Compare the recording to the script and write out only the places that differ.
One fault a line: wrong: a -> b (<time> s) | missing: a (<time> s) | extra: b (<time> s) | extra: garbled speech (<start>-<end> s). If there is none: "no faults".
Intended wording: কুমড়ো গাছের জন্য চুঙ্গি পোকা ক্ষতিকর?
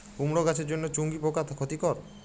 no faults